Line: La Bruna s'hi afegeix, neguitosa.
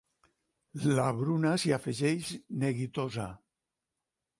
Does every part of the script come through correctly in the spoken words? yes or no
yes